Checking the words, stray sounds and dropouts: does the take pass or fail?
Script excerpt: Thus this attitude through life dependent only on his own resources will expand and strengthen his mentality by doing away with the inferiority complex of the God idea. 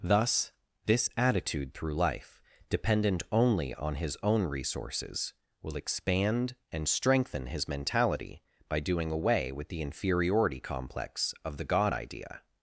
pass